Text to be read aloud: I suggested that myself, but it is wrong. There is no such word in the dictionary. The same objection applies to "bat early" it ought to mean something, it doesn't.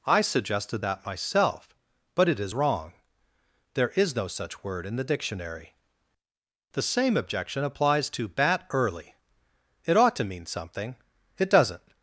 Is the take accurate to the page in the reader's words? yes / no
yes